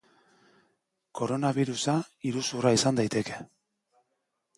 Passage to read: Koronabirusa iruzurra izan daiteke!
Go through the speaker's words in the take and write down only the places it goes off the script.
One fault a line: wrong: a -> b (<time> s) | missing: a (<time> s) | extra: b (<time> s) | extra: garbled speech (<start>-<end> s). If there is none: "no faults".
no faults